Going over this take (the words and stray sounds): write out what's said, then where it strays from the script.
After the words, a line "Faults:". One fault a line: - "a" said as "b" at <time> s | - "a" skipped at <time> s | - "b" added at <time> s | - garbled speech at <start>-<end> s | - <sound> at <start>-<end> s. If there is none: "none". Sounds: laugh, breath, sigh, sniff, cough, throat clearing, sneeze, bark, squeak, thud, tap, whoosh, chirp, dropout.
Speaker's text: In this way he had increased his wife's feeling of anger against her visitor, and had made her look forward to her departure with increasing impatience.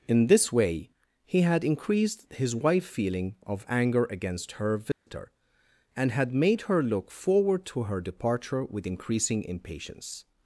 In this way he had increased his wife's feeling of anger against her visitor, and had made her look forward to her departure with increasing impatience.
Faults:
- dropout at 4.9-5.1 s